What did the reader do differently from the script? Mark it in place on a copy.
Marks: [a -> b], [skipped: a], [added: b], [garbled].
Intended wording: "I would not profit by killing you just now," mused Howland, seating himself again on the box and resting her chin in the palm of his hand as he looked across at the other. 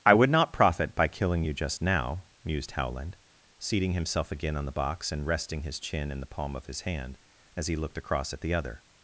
"I would not profit by killing you just now," mused Howland, seating himself again on the box and resting [her -> his] chin in the palm of his hand as he looked across at the other.